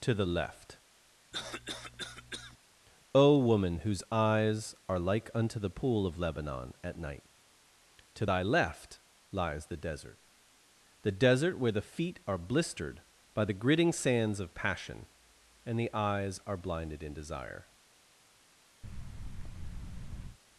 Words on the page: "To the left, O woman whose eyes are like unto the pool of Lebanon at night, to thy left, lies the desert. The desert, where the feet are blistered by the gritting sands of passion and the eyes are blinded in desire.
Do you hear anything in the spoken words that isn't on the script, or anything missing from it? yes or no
no